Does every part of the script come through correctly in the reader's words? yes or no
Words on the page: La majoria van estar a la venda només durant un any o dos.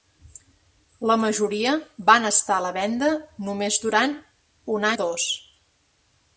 no